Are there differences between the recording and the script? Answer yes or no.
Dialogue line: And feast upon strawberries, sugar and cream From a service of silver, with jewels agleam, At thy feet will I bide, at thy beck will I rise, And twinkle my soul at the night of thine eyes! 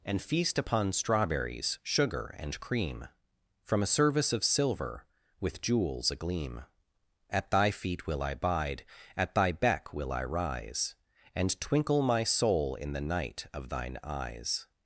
yes